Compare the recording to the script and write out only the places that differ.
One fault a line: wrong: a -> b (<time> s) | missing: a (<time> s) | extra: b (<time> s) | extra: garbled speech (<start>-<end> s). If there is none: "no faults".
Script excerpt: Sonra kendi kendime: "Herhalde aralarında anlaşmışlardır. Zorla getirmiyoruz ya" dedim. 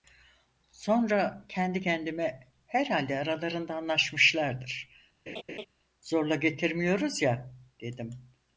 no faults